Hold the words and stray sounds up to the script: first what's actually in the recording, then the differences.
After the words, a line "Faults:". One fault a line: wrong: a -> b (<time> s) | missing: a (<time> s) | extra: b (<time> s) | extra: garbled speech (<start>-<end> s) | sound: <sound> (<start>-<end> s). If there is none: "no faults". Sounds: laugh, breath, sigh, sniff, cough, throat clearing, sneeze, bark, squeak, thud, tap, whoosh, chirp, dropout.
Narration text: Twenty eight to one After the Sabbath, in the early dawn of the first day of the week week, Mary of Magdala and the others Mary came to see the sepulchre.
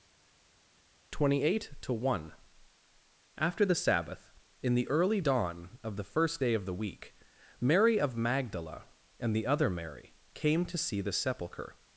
Twenty eight to one After the Sabbath, in the early dawn of the first day of the week, Mary of Magdala and the other Mary came to see the sepulchre.
Faults:
missing: week (7.1 s)
wrong: others -> other (9.4 s)